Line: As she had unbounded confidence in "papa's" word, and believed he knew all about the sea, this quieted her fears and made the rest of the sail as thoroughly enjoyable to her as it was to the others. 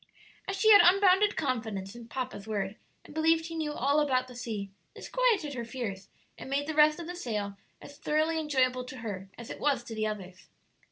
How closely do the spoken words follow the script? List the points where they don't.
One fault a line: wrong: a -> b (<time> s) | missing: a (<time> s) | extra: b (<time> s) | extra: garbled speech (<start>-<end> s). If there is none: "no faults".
no faults